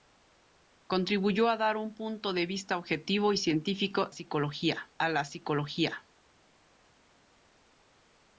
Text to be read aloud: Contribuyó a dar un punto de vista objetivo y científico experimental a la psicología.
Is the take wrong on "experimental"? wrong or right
wrong